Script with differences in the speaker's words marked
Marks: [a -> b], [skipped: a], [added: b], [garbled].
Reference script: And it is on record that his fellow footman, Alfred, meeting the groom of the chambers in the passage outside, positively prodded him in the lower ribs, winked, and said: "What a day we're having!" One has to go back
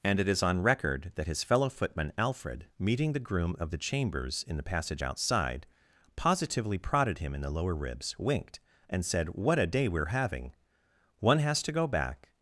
And it is on record that his fellow footman, Alfred, meeting the groom of the chambers in the passage outside, positively prodded him in the lower ribs, winked, and said: "What a day we're having!" One has to go back